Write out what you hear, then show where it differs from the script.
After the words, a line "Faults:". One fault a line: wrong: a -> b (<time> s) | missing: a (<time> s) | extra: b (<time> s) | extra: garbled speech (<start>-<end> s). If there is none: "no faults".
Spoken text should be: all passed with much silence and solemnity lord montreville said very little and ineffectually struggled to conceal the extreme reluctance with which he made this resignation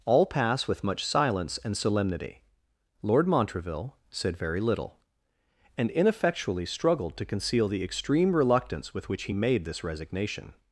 all pass with much silence and solemnity lord montreville said very little and ineffectually struggled to conceal the extreme reluctance with which he made this resignation
Faults:
wrong: passed -> pass (0.2 s)